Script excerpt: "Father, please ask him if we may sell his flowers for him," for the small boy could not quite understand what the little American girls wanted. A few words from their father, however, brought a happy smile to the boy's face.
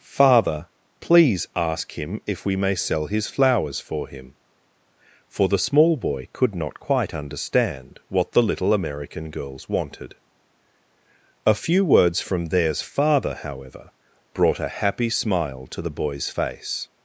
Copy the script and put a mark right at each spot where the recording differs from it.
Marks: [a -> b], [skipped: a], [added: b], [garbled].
"Father, please ask him if we may sell his flowers for him," for the small boy could not quite understand what the little American girls wanted. A few words from [their -> theirs] father, however, brought a happy smile to the boy's face.